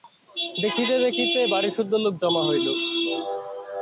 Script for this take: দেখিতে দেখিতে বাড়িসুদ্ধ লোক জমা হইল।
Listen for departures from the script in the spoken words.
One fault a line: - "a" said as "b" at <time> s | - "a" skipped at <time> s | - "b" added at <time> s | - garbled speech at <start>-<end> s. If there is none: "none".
none